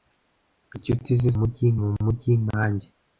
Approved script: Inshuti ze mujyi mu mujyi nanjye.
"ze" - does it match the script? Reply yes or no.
yes